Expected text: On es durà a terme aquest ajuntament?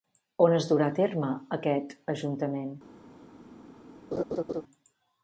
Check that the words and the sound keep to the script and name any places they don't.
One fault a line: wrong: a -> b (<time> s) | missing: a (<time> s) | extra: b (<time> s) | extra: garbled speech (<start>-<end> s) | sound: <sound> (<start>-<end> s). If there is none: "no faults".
sound: laugh (4.1-4.6 s)